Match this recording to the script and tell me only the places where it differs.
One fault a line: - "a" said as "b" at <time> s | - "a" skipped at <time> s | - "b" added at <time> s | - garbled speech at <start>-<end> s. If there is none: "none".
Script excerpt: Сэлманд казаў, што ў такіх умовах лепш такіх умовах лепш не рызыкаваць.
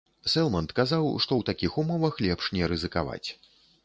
- "такіх умовах лепш" skipped at 2.5 s